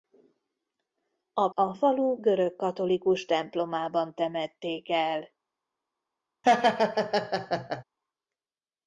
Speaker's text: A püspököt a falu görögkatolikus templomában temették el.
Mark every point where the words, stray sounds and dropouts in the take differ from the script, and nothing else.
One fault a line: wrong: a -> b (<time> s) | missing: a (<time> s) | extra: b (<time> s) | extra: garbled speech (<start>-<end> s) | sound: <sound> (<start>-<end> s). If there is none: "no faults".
missing: püspököt (1.5 s)
sound: laugh (6.4-7.8 s)